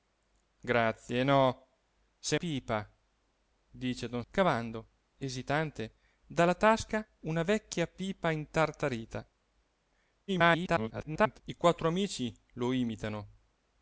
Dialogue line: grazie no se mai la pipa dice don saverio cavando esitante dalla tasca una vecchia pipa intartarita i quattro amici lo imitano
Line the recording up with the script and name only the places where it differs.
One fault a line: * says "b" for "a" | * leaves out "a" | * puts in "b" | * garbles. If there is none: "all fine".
* leaves out "mai la"
* leaves out "saverio"
* garbles